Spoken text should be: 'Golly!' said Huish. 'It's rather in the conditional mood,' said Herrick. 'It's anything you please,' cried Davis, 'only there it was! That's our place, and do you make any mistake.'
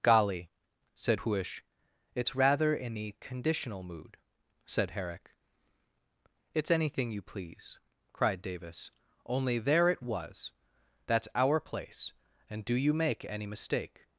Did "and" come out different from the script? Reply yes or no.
no